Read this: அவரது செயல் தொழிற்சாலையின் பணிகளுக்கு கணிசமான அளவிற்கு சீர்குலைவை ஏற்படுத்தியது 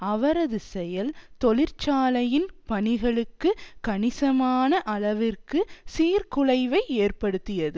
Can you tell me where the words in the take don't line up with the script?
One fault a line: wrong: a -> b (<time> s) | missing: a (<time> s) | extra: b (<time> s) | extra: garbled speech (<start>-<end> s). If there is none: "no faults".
no faults